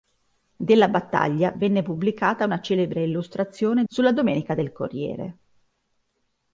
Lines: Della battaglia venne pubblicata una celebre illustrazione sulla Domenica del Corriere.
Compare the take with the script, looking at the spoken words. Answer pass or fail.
pass